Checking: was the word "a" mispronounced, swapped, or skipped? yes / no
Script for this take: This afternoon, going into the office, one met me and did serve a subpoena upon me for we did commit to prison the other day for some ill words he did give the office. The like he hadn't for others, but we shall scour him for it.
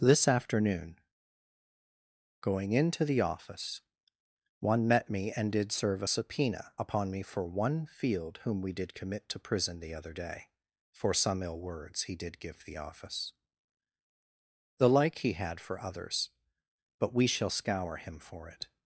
no